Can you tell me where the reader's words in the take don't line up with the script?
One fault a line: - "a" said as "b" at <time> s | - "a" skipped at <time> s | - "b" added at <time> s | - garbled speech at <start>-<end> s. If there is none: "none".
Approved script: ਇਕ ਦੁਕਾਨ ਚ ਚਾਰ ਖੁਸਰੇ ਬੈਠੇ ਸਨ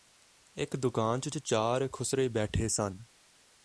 - "ਚ" added at 1.3 s